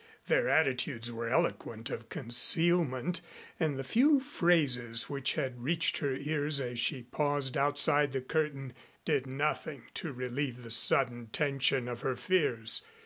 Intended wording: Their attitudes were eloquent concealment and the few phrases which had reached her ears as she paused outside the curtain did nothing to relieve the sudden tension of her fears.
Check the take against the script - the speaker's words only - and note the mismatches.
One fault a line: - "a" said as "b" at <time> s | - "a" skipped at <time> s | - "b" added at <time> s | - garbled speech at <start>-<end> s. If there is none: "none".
- "of" added at 1.9 s